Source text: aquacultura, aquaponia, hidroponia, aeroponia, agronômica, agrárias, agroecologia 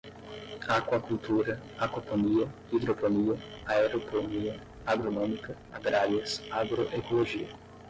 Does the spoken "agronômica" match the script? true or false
true